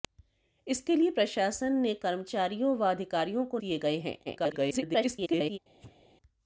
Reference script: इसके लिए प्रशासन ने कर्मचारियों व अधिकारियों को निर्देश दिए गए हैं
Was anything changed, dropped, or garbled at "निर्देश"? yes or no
yes